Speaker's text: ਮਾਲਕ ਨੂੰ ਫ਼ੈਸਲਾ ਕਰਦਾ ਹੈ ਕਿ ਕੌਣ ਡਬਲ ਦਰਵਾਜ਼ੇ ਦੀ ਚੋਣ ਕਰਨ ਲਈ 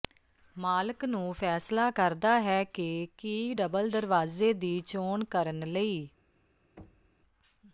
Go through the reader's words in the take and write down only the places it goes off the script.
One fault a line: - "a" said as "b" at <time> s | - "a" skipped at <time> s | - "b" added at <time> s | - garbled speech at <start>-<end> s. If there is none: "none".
- "ਕੌਣ" said as "ਕੀ" at 3.2 s